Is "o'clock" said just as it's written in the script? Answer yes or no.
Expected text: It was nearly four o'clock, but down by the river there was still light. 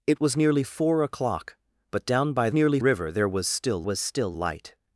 yes